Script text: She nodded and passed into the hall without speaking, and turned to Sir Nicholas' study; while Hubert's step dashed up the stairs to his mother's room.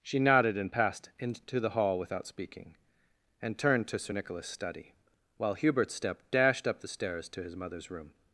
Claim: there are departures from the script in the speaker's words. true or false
false